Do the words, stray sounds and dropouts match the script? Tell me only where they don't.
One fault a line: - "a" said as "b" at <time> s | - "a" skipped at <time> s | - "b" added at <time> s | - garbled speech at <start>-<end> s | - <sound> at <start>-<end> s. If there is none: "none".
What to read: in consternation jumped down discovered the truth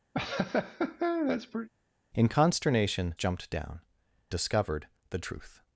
- laugh at 0.1-1.7 s